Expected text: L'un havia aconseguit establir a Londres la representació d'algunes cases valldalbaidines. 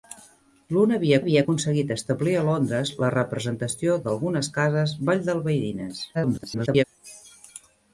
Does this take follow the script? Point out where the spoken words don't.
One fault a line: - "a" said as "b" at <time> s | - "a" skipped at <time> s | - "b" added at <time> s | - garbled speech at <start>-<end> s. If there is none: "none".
- "havia" added at 1.2 s
- garbled speech at 6.1-6.8 s